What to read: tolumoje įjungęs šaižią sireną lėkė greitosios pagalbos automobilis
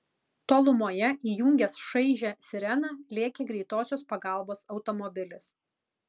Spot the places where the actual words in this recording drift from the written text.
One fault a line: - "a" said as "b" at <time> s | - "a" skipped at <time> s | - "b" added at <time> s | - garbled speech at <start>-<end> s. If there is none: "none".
none